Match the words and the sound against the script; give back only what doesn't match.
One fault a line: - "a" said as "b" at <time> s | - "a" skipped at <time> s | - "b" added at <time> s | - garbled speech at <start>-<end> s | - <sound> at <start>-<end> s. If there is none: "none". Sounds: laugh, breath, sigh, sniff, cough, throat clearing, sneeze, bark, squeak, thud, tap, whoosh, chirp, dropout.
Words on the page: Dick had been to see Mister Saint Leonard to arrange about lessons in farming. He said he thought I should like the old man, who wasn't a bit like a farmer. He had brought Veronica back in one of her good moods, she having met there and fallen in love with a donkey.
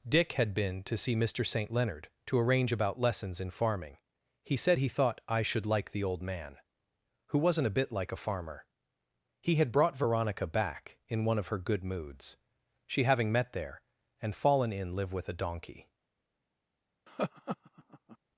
- "love" said as "live" at 15.0 s
- laugh at 17.1-18.2 s